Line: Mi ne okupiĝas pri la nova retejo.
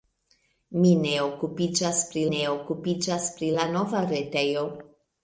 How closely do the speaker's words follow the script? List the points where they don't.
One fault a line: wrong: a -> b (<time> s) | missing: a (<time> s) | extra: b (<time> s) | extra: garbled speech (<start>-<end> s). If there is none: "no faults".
extra: ne okupiĝas pri (2.3 s)